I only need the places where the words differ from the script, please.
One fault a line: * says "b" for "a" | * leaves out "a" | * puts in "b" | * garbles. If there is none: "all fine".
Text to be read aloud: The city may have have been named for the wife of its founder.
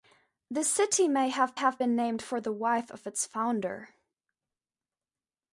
all fine